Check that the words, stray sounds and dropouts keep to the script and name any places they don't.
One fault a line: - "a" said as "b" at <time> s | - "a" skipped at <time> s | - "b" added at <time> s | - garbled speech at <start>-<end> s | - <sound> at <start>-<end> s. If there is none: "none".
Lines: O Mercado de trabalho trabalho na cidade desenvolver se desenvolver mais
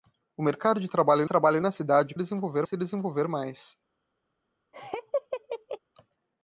- laugh at 4.7-5.8 s